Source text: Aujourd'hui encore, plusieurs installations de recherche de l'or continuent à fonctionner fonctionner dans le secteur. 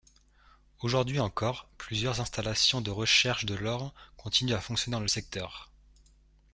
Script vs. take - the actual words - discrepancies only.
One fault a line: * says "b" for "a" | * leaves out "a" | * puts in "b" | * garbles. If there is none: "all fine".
* leaves out "fonctionner"